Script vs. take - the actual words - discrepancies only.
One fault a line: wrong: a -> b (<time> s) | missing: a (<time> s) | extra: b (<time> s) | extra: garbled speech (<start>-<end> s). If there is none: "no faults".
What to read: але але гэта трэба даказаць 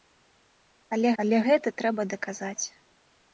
no faults